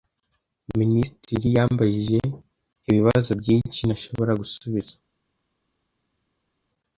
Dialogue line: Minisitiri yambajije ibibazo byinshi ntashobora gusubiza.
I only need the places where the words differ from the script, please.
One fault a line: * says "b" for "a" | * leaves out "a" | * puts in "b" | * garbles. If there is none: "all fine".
all fine